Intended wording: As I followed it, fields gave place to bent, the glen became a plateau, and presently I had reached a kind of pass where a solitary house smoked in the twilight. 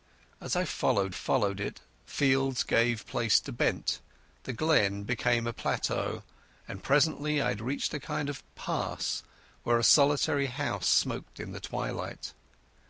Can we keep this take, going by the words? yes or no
no